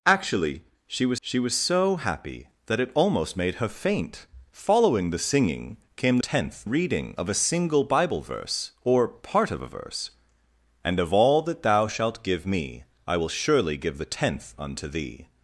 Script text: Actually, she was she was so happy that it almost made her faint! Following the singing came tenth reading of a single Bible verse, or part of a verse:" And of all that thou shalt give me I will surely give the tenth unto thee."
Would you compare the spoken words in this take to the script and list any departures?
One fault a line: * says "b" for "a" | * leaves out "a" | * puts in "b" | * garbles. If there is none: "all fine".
all fine